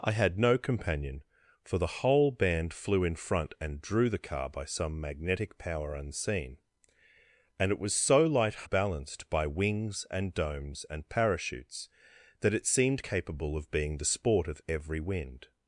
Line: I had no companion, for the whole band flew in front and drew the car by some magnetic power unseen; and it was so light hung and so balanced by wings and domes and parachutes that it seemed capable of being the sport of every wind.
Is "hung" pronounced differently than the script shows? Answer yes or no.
yes